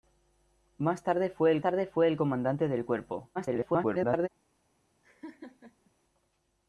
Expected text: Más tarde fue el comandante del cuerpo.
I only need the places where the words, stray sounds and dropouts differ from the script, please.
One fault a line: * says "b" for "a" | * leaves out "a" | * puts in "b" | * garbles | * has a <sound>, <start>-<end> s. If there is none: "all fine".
* puts in "tarde fue el"
* garbles
* has a laugh, 5.0-5.9 s